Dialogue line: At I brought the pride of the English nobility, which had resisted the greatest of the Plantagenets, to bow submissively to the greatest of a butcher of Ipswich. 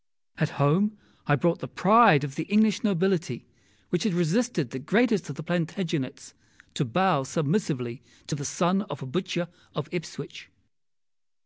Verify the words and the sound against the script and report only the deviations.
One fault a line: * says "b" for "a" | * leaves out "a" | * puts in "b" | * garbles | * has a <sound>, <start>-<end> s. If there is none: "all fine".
* puts in "home"
* says "son" for "greatest"